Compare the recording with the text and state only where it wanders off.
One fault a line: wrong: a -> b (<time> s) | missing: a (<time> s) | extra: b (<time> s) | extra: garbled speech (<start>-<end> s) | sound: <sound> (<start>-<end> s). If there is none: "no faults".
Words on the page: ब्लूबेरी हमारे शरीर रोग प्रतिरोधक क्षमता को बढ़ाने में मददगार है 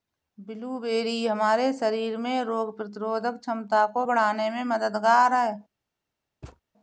extra: में (2.2 s)
sound: thud (6.4-6.6 s)